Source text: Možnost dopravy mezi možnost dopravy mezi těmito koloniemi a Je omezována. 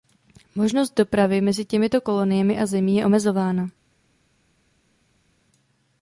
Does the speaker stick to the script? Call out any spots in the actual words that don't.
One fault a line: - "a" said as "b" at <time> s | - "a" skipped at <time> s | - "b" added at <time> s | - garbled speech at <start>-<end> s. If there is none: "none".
- "možnost dopravy mezi" skipped at 1.6 s
- "Zemí" added at 2.6 s